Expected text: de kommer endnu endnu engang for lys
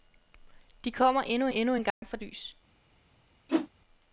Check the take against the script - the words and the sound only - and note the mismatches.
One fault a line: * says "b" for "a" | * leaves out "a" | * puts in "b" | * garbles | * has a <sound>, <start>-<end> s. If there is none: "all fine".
* has a dropout, 1.9-2.0 s
* has a whoosh, 3.5-3.7 s